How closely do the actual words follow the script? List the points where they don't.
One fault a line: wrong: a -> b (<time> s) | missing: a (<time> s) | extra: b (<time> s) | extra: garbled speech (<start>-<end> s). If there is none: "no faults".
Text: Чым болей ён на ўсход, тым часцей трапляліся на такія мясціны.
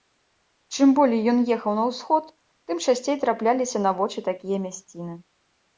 extra: ехаў (1.6 s)
extra: вочы (4.0 s)